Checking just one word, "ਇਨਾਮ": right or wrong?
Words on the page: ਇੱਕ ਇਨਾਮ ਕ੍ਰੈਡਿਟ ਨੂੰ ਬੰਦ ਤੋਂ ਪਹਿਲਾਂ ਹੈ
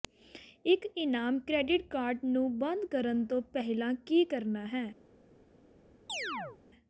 right